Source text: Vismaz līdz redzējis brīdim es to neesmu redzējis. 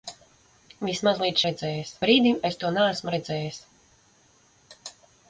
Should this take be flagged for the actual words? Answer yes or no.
no